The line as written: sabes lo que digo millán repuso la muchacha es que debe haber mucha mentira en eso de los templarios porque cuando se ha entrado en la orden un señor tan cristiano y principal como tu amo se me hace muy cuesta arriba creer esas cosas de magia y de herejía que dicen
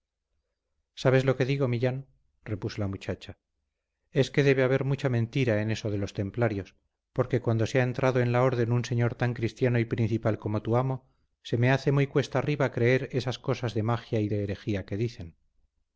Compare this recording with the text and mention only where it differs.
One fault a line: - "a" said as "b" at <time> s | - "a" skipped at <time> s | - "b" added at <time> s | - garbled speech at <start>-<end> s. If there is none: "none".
none